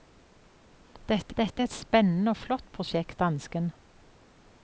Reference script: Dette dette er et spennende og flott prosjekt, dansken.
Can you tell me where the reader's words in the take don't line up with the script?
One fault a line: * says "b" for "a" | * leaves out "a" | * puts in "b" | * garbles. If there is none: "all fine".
all fine